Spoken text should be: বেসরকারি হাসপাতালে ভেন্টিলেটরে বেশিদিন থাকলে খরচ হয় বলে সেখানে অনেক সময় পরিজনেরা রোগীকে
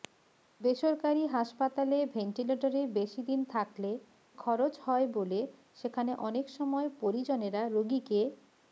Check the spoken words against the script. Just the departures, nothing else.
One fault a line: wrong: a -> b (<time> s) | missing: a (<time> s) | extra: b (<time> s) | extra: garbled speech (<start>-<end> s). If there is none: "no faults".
no faults